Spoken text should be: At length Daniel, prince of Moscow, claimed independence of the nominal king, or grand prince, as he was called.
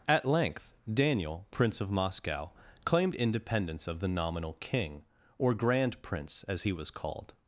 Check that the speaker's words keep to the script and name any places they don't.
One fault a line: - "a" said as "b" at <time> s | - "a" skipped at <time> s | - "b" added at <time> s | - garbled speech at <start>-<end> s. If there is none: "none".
none